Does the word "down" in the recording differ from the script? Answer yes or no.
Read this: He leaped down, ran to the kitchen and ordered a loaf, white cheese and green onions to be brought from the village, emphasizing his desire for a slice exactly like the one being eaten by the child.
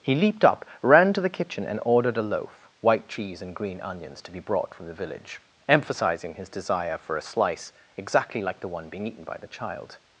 yes